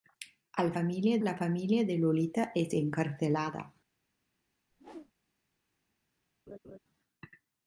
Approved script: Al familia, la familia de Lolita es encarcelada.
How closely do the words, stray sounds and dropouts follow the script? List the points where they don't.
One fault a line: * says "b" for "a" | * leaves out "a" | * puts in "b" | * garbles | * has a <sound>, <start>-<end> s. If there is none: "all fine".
* has a whoosh, 4.7-5.1 s
* has a laugh, 6.5-6.8 s